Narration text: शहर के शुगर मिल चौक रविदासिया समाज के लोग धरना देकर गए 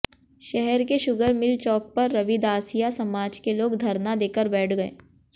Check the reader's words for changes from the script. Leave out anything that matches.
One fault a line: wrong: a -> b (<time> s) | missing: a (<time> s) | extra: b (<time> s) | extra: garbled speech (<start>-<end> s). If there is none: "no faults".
extra: पर (1.9 s)
extra: बैठ (4.5 s)